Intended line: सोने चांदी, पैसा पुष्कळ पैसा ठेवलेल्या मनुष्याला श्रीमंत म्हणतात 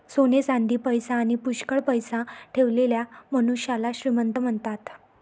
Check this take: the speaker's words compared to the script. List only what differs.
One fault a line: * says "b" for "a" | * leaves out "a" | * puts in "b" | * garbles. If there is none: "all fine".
* puts in "आणी"